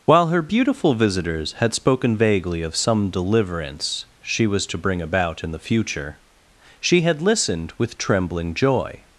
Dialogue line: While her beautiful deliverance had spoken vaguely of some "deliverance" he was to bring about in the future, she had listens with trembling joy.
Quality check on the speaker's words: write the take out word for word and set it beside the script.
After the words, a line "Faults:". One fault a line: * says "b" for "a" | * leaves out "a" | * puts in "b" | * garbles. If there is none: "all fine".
While her beautiful visitors had spoken vaguely of some "deliverance" she was to bring about in the future, she had listened with trembling joy.
Faults:
* says "visitors" for "deliverance"
* says "she" for "he"
* says "listened" for "listens"